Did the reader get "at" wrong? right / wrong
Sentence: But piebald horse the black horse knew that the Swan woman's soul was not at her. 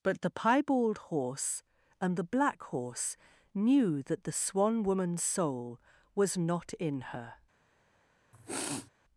wrong